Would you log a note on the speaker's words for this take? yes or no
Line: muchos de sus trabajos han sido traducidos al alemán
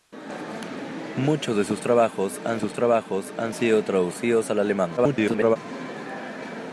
yes